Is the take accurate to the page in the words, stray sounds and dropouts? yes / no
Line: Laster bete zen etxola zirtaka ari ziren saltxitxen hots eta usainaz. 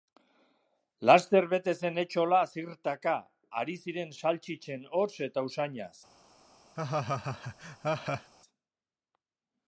no